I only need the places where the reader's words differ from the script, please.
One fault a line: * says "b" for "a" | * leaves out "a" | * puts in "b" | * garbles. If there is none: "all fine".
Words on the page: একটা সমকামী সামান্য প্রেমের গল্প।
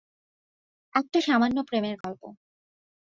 * leaves out "সমকামী"